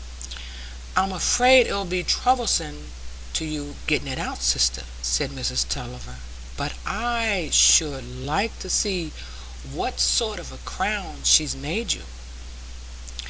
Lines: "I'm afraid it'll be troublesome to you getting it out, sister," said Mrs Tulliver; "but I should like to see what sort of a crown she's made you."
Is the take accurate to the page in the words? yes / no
yes